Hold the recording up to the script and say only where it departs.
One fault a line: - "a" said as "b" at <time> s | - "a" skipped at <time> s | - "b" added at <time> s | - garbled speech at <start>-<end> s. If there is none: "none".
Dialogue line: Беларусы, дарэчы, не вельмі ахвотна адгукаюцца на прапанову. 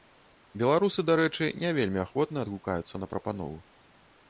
none